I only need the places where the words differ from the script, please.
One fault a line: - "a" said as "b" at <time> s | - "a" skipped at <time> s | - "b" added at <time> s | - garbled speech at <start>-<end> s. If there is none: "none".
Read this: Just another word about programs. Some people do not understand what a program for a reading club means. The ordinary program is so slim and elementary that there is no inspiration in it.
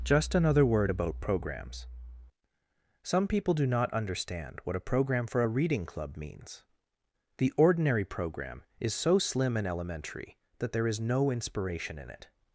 none